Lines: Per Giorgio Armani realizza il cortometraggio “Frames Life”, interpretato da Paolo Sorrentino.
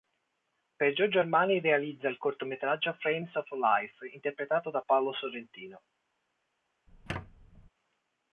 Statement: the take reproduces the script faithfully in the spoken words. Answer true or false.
false